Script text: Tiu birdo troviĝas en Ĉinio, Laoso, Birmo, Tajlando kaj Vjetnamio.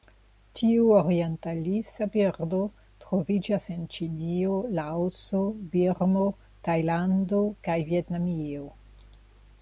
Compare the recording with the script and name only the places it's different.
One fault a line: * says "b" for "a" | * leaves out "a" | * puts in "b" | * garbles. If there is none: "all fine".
* puts in "orientalisa"